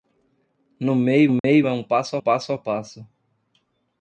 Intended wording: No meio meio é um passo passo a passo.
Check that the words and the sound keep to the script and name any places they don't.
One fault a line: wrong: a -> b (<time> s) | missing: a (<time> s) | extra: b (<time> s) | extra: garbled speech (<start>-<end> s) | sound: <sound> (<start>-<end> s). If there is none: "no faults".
sound: dropout (1.4-1.4 s)